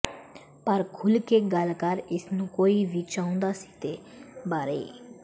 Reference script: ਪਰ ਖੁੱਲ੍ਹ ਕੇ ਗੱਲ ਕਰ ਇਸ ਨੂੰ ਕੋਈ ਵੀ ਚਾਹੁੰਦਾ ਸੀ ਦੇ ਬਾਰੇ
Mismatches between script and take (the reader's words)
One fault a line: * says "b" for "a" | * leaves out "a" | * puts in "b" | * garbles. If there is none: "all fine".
all fine